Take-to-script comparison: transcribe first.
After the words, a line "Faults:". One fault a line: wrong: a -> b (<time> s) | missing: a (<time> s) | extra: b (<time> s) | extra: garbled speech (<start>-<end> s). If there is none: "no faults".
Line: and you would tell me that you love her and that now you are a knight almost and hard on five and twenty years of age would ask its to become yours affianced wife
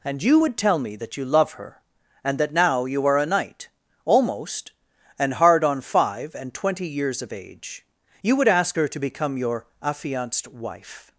and you would tell me that you love her and that now you are a knight almost and hard on five and twenty years of age you would ask her to become your affianced wife
Faults:
extra: you (8.2 s)
wrong: its -> her (8.7 s)
wrong: yours -> your (9.4 s)